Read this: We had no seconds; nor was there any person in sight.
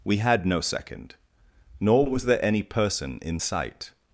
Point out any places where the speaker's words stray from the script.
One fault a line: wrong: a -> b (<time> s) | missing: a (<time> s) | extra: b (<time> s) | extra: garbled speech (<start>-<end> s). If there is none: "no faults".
wrong: seconds -> second (0.6 s)